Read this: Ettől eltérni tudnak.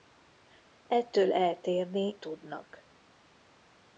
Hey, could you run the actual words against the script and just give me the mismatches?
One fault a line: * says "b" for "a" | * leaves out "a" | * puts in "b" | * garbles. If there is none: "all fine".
all fine